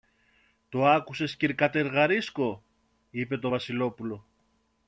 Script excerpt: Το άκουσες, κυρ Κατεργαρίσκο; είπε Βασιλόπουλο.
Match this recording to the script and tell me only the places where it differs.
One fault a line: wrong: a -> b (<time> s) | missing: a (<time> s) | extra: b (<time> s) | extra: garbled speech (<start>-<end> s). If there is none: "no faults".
extra: το (3.4 s)